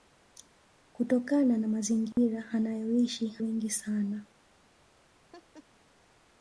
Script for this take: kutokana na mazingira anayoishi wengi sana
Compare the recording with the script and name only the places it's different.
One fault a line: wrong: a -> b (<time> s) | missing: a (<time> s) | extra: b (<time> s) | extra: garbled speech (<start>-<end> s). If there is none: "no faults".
no faults